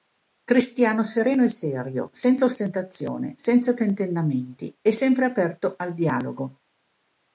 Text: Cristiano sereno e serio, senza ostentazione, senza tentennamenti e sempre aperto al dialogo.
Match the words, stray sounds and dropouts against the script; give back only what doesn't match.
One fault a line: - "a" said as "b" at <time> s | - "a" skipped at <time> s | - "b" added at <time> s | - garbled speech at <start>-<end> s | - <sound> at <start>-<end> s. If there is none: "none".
none